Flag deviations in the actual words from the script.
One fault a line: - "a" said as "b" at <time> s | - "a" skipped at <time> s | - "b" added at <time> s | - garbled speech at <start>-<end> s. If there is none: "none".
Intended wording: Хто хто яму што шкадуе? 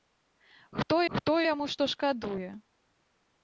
none